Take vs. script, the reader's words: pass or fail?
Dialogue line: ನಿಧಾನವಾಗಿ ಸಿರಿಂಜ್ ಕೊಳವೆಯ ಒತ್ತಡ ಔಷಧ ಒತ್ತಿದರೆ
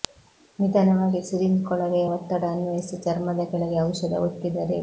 fail